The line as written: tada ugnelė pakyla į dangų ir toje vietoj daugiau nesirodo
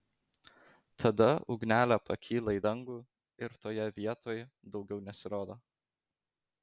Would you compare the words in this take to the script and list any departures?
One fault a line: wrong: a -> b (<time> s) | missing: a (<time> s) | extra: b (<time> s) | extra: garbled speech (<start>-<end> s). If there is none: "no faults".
no faults